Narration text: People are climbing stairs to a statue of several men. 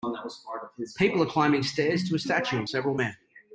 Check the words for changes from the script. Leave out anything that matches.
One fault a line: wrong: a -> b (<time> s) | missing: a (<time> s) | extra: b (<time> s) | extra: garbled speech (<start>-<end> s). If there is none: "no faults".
no faults